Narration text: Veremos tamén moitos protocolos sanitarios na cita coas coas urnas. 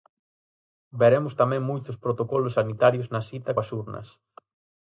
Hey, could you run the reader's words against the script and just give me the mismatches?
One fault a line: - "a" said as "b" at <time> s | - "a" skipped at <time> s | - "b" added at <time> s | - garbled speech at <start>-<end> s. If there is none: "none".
- "coas" skipped at 3.7 s